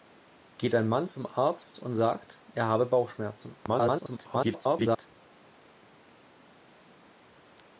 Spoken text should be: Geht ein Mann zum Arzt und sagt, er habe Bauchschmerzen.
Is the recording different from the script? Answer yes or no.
yes